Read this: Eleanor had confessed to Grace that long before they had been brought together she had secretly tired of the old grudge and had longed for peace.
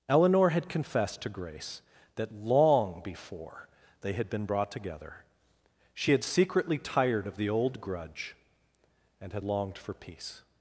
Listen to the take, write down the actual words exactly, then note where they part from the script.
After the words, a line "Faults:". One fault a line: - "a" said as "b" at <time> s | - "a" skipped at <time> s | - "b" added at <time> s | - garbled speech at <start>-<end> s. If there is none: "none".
Eleanor had confessed to Grace that long before they had been brought together she had secretly tired of the old grudge and had longed for peace.
Faults:
none